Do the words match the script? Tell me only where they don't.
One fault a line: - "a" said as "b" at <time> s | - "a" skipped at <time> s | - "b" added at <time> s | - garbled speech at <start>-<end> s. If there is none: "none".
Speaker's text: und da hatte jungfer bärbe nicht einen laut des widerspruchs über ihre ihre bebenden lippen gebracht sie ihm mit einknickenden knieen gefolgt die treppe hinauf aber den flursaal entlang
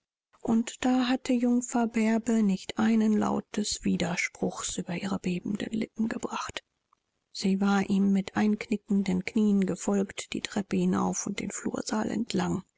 - "ihre" skipped at 5.2 s
- "war" added at 7.6 s
- "aber" said as "und" at 11.3 s